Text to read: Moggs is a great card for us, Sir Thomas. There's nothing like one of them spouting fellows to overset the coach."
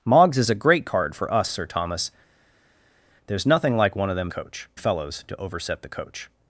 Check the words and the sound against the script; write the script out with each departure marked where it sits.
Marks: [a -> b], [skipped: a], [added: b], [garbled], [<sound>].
Moggs is a great card for us, Sir Thomas. There's nothing like one of them [spouting -> coach] fellows to overset the coach."